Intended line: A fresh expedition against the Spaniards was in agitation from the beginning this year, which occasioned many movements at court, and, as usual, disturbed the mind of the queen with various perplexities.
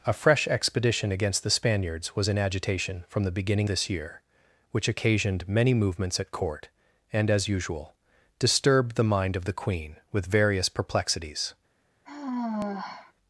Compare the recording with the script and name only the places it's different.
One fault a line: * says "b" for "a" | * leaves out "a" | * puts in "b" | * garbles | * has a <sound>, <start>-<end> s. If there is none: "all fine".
* has a sigh, 12.0-13.1 s